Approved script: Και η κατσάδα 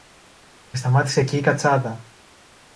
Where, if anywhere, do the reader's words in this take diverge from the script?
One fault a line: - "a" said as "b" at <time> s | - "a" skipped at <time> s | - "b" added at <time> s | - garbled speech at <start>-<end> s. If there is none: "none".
- "σταμάτησε εκεί" added at 0.8 s